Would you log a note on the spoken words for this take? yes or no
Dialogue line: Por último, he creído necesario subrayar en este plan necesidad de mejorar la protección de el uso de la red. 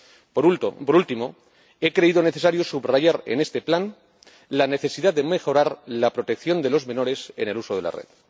yes